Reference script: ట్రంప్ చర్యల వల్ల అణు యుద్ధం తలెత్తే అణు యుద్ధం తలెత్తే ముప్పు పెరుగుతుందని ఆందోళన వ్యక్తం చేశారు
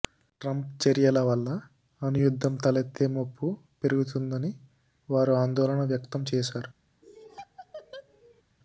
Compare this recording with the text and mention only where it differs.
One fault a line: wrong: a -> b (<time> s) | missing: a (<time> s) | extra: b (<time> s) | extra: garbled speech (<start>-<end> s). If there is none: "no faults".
missing: అణు యుద్ధం తలెత్తే (3.1 s)
extra: వారు (5.1 s)